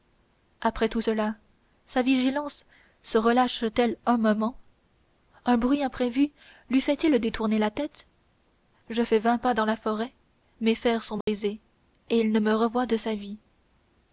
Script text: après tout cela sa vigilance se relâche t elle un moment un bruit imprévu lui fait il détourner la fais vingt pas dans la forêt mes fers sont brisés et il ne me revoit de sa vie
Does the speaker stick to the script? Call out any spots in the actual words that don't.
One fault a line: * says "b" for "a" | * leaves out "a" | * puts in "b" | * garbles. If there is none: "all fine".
* puts in "tête je"